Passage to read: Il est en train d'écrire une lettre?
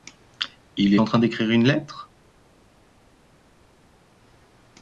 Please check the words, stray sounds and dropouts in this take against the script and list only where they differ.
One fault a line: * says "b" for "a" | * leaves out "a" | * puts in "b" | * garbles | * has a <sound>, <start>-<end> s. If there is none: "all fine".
* leaves out "est"